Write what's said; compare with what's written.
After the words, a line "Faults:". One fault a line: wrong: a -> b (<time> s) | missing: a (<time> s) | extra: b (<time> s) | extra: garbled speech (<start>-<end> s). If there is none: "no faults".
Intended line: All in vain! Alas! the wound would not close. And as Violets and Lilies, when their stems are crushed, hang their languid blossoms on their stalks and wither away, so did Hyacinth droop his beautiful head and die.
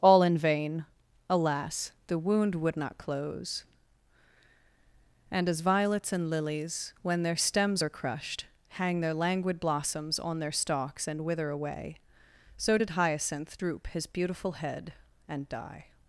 All in vain! Alas! the wound would not close. And as Violets and Lilies, when their stems are crushed, hang their languid blossoms on their stalks and wither away, so did Hyacinth droop his beautiful head and die.
Faults:
no faults